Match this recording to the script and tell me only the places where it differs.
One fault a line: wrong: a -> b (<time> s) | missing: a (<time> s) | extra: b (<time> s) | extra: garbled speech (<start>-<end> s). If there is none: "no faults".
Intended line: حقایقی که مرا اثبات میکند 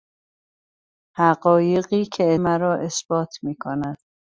no faults